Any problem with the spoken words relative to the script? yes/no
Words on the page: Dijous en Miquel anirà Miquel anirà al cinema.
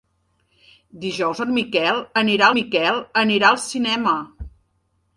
no